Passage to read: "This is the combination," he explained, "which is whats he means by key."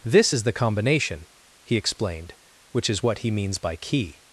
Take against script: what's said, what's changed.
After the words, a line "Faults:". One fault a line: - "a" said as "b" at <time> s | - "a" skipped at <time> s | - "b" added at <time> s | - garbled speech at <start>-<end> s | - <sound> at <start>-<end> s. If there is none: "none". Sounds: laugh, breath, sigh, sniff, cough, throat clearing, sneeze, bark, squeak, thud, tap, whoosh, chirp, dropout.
"This is the combination," he explained, "which is what he means by key."
Faults:
- "whats" said as "what" at 3.0 s